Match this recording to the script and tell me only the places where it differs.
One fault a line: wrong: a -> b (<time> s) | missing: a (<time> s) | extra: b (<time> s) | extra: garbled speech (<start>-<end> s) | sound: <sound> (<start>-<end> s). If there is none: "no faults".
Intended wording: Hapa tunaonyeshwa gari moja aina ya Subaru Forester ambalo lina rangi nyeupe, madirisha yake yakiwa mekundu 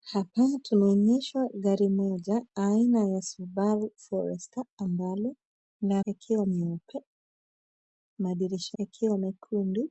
wrong: rangi -> yakiwa (6.1 s)
missing: yake (8.8 s)